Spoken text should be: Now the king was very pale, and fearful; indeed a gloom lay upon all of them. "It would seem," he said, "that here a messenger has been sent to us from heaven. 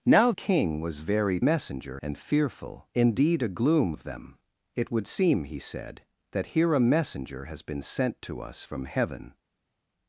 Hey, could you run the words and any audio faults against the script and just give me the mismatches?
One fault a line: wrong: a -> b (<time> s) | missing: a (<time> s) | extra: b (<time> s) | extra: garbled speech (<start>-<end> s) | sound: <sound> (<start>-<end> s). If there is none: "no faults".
missing: the (0.3 s)
wrong: pale -> messenger (1.4 s)
missing: lay upon all (3.9 s)